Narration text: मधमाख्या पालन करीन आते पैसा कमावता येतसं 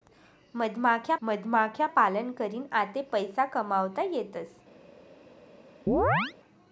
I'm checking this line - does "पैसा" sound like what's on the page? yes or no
yes